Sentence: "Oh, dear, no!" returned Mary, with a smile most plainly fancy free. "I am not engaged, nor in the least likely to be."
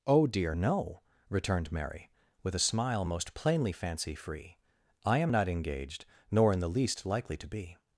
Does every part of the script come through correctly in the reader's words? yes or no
yes